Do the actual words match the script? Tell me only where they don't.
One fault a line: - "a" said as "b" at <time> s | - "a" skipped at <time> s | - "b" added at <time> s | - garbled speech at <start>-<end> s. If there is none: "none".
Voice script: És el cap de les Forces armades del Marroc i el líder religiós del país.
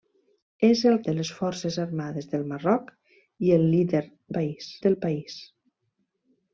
- "cap" skipped at 0.9 s
- "religiós" said as "país" at 4.4 s